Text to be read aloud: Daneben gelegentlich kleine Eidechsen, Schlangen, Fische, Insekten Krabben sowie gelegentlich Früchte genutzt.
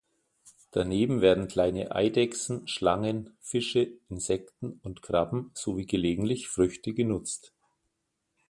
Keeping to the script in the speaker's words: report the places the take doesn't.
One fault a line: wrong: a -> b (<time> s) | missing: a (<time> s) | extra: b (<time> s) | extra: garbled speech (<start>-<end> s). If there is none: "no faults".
wrong: gelegentlich -> werden (1.2 s)
extra: und (4.8 s)